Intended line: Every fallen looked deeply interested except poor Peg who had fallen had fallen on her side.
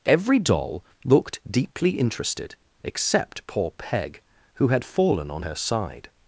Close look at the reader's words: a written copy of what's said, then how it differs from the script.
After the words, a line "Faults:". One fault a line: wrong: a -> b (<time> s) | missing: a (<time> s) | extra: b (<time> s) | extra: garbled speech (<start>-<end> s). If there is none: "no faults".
Every doll looked deeply interested except poor Peg who had fallen on her side.
Faults:
wrong: fallen -> doll (0.4 s)
missing: had fallen (5.3 s)